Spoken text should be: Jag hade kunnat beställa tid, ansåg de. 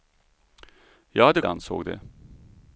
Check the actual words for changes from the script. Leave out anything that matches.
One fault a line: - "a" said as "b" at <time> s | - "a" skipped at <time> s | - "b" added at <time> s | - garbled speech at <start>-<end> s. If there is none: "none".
- "kunnat beställa tid" skipped at 1.4 s